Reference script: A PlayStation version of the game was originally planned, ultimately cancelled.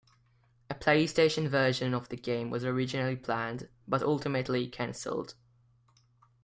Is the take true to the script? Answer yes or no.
no